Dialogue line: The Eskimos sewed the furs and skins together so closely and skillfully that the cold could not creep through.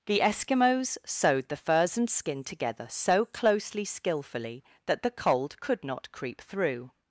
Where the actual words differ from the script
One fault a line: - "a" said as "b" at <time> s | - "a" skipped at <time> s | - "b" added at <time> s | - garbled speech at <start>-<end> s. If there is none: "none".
- "skins" said as "skin" at 2.1 s
- "and" skipped at 3.9 s